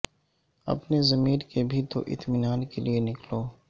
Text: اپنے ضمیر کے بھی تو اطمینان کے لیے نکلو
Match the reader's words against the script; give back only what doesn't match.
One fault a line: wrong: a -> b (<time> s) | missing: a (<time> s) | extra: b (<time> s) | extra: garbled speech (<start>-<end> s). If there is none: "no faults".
no faults